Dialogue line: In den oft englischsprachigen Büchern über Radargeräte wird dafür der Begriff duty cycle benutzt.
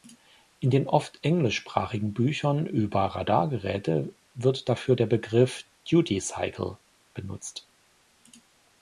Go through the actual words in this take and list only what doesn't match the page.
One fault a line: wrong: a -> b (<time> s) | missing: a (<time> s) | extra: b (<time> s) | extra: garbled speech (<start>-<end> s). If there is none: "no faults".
no faults